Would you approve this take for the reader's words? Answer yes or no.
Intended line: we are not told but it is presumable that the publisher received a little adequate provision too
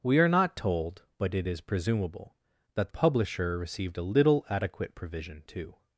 no